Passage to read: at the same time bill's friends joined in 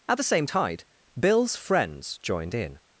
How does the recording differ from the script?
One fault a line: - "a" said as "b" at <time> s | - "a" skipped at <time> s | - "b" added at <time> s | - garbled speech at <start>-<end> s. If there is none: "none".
- "time" said as "tide" at 0.4 s